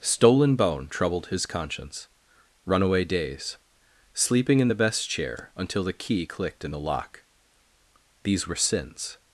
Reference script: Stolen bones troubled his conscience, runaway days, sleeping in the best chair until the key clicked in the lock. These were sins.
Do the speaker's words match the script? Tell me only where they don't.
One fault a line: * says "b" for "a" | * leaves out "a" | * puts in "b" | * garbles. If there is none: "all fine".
* says "bone" for "bones"